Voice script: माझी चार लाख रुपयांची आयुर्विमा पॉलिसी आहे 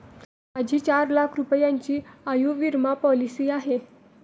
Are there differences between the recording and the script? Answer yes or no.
no